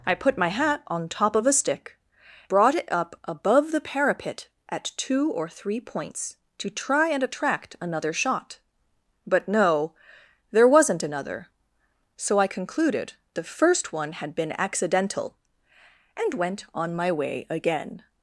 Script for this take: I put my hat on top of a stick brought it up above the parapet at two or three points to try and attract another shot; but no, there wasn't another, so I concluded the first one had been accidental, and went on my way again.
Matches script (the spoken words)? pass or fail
pass